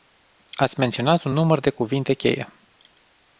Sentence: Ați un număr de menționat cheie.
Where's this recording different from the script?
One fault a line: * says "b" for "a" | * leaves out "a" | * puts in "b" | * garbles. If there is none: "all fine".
* puts in "menționat"
* says "cuvinte" for "menționat"